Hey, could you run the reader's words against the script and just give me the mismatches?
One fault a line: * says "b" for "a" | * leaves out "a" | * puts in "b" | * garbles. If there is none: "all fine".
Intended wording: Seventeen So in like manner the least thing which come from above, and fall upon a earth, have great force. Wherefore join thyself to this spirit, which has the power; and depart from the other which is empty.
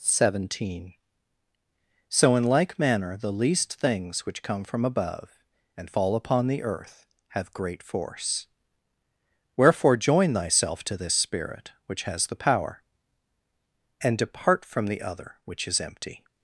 * says "things" for "thing"
* says "the" for "a"